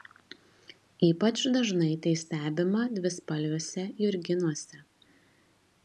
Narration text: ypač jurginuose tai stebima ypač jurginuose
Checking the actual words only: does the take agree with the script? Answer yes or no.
no